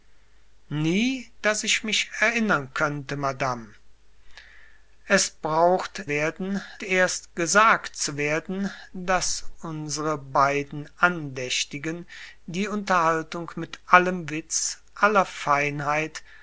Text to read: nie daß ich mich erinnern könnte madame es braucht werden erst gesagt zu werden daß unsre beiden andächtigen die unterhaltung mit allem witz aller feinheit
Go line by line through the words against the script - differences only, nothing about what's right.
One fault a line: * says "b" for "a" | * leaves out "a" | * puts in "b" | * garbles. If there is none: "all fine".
all fine